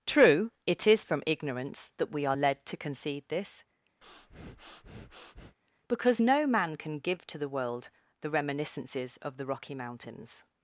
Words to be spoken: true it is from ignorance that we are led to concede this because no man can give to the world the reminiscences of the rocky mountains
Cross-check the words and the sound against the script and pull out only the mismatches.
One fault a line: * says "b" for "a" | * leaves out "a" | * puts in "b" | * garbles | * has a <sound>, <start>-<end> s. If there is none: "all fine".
* has a breath, 4.0-5.6 s